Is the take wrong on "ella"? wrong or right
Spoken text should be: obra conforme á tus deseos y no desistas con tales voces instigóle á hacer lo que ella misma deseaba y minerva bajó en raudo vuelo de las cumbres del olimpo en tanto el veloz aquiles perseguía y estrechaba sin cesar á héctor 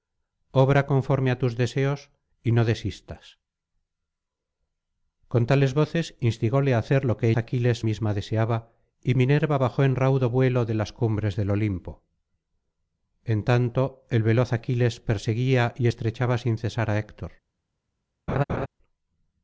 wrong